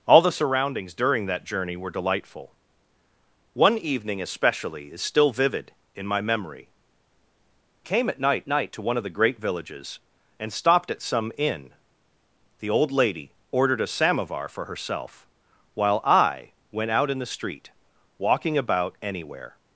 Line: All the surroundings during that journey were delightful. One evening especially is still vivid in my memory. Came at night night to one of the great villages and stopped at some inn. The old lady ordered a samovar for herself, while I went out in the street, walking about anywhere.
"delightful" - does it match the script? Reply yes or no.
yes